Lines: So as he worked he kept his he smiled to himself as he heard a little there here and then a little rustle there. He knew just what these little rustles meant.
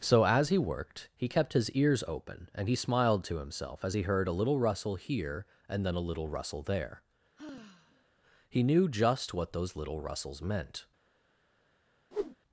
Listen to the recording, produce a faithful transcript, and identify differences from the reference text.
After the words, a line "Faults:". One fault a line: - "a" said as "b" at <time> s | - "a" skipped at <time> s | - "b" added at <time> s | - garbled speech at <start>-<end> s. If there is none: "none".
So as he worked he kept his ears open, and he smiled to himself as he heard a little rustle here and then a little rustle there. He knew just what those little rustles meant.
Faults:
- "ears open and" added at 1.7 s
- "there" said as "rustle" at 4.6 s
- "these" said as "those" at 9.5 s